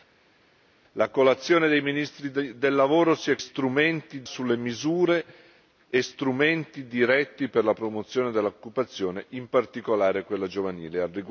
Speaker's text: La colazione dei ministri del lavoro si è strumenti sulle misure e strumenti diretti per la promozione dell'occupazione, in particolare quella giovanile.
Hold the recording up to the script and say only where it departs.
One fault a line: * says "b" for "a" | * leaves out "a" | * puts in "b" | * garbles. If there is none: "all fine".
all fine